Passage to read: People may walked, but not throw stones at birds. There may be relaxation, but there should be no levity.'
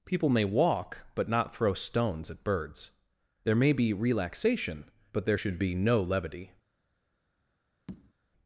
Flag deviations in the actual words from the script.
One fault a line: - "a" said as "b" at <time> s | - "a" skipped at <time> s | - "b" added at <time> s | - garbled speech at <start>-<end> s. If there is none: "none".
- "walked" said as "walk" at 0.5 s